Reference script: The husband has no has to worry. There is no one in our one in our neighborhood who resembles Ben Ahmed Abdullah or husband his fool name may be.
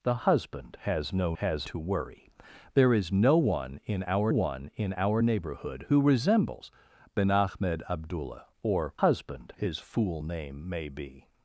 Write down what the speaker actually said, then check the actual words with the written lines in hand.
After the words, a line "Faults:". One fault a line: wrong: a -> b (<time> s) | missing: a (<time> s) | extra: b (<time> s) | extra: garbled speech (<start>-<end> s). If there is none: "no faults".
The husband has no has to worry. There is no one in our one in our neighborhood who resembles Ben Ahmed Abdullah or husband his fool name may be.
Faults:
no faults